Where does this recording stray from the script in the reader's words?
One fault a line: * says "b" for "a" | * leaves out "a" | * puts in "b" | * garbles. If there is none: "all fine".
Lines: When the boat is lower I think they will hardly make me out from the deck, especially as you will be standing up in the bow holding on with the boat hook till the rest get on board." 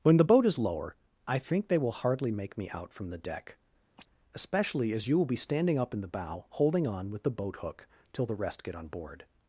all fine